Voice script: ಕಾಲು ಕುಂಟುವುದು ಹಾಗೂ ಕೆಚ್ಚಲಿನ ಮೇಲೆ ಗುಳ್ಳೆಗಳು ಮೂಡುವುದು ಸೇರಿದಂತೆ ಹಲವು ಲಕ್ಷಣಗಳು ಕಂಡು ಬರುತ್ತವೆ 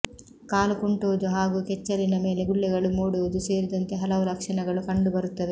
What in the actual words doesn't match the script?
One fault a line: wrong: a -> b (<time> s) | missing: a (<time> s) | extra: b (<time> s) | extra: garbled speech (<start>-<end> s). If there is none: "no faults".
no faults